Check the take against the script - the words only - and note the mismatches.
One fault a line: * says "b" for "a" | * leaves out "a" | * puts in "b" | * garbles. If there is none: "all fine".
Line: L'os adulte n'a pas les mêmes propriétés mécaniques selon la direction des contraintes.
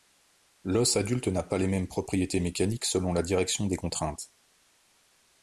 all fine